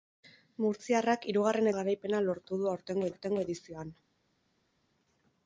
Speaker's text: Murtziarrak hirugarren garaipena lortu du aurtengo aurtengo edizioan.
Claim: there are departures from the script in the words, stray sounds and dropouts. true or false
false